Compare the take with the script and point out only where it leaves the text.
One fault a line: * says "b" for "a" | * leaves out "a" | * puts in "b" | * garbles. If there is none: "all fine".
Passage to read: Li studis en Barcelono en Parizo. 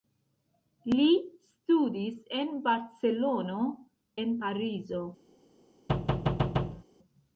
all fine